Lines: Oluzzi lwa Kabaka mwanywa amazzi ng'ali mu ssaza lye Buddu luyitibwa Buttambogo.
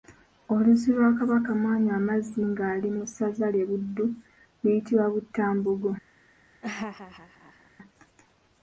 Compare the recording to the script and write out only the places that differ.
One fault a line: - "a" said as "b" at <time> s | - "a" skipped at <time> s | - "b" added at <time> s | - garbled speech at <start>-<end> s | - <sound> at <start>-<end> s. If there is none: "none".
- laugh at 6.6-7.7 s